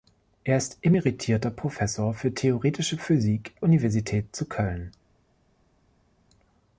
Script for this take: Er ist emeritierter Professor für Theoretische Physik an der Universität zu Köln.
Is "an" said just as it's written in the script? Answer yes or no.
no